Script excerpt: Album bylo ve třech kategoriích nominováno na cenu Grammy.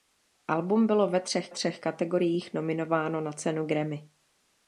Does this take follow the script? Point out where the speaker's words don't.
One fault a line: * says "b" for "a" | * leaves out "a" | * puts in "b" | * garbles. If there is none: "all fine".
* puts in "třech"